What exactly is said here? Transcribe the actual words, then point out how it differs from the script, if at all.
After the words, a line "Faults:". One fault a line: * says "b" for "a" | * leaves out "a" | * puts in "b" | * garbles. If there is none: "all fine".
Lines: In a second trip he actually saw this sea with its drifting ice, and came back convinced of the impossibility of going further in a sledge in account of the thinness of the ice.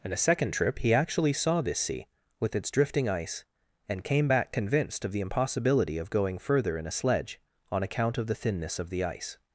In a second trip he actually saw this sea with its drifting ice, and came back convinced of the impossibility of going further in a sledge on account of the thinness of the ice.
Faults:
* says "on" for "in"